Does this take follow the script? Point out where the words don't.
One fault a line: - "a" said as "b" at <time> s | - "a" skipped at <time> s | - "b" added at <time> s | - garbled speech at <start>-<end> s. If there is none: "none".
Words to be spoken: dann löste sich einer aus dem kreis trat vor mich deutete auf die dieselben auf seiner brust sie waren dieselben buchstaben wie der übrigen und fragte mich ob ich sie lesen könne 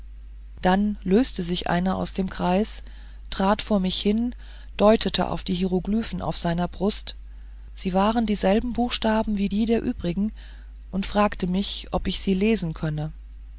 - "hin" added at 4.0 s
- "dieselben" said as "hieroglyphen" at 5.5 s
- "die" added at 9.4 s